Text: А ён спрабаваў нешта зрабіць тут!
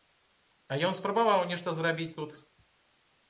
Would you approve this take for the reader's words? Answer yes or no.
yes